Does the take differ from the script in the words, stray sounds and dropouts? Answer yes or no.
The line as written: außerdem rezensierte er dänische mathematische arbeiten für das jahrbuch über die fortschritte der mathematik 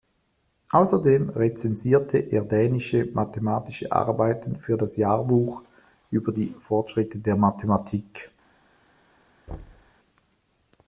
yes